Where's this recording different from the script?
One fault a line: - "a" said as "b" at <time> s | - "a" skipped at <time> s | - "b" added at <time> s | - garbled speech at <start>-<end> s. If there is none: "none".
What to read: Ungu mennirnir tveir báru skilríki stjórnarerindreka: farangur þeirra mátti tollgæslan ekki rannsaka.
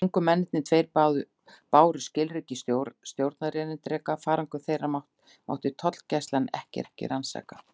- "ekki" added at 6.9 s